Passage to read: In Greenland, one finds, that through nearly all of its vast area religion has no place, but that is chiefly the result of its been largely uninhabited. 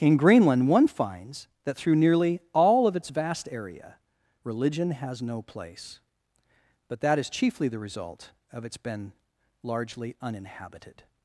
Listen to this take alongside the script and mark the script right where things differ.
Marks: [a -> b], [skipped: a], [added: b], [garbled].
In Greenland, one finds, that through nearly all of its vast area religion has no place, but that is chiefly the result of its been largely uninhabited.